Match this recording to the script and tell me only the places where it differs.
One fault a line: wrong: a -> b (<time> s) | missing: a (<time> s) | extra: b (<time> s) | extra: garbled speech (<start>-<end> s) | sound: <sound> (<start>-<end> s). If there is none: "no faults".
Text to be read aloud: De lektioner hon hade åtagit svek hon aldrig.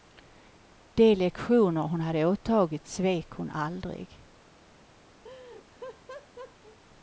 sound: laugh (5.2-6.8 s)